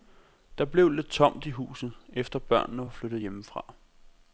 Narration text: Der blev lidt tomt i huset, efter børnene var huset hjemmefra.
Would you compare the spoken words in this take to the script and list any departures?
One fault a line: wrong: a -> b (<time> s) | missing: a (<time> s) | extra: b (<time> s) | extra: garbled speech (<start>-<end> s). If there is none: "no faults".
wrong: huset -> flyttet (2.9 s)